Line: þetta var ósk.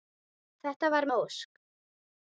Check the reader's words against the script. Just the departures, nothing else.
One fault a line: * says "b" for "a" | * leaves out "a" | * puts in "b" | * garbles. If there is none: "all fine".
all fine